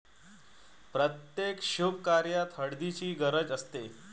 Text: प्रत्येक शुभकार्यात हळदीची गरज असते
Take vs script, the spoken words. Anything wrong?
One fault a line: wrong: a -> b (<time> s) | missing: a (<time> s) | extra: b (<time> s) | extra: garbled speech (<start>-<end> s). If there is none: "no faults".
no faults